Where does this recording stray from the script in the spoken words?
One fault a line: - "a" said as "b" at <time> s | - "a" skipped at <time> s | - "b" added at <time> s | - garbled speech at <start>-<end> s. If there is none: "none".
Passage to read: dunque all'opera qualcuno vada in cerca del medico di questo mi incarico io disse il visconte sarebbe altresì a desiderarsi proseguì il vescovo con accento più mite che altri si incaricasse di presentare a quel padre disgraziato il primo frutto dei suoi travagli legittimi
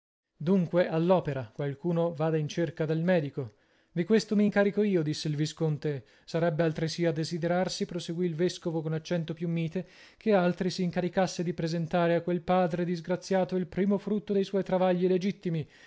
none